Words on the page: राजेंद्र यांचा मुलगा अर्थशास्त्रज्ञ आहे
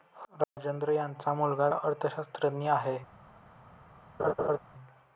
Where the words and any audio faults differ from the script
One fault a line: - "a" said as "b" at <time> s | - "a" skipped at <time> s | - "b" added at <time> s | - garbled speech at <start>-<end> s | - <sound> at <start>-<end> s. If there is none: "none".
- dropout at 0.4-0.6 s
- laugh at 4.2-4.6 s